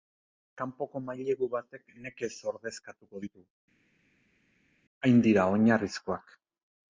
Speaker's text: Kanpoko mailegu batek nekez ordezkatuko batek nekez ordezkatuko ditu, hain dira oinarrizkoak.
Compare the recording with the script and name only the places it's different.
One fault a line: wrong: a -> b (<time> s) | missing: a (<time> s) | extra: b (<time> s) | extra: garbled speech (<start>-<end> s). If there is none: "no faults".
missing: batek nekez ordezkatuko (3.2 s)